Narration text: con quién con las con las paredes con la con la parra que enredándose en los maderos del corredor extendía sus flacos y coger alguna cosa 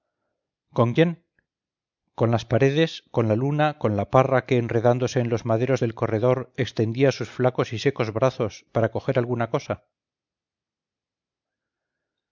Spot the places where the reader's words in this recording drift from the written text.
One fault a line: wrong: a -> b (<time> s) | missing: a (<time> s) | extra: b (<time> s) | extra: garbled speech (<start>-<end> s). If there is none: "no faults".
missing: con las (2.4 s)
extra: luna (3.3 s)
extra: secos brazos para (7.8 s)